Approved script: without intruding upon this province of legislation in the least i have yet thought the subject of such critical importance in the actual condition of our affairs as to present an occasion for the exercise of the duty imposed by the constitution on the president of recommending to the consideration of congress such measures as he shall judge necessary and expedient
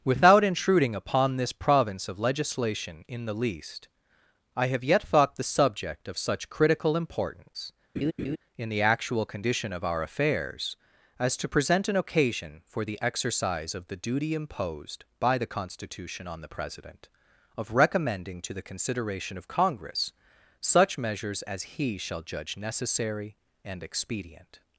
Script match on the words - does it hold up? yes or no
yes